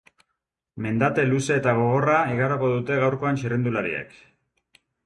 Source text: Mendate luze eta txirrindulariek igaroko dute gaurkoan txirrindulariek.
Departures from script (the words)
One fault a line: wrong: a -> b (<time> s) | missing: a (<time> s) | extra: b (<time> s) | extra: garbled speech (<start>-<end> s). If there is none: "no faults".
wrong: txirrindulariek -> gogorra (1.8 s)